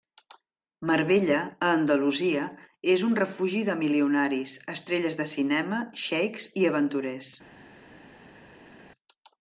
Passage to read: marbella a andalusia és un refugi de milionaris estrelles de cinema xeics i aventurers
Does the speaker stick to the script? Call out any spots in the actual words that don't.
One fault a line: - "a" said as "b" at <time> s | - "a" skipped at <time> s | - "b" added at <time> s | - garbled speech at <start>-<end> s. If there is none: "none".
none